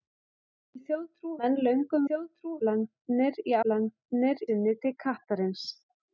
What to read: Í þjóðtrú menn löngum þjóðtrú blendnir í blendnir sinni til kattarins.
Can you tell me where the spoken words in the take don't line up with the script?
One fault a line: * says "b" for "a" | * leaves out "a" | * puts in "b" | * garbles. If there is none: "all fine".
all fine